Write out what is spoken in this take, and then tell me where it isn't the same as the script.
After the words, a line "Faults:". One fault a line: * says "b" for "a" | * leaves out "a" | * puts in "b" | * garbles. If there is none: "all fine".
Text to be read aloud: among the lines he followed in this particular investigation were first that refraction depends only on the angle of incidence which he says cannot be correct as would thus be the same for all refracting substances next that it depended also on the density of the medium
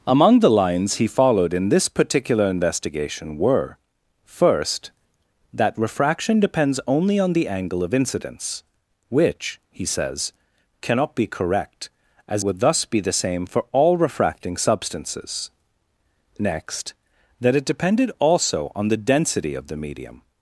among the lines he followed in this particular investigation were first that refraction depends only on the angle of incidence which he says cannot be correct as would thus be the same for all refracting substances next that it depended also on the density of the medium
Faults:
all fine